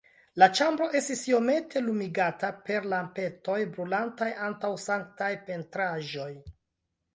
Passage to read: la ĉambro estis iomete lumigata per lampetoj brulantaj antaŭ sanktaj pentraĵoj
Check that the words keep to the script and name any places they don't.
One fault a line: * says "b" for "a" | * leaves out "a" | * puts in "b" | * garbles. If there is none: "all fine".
all fine